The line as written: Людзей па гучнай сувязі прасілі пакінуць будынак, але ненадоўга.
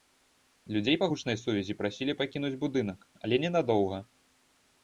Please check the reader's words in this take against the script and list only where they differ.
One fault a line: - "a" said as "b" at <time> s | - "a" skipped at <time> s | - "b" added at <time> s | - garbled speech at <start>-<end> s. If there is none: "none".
none